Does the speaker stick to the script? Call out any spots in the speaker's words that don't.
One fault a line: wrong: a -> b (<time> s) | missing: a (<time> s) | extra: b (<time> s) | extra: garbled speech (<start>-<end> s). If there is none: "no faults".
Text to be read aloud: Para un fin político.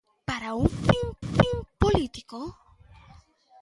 extra: fin (1.2 s)